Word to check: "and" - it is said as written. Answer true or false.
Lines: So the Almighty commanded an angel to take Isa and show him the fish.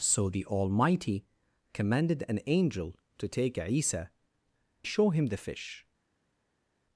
false